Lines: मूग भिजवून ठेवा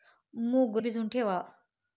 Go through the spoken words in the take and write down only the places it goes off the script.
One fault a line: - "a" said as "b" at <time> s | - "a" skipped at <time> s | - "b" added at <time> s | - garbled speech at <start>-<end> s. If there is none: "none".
none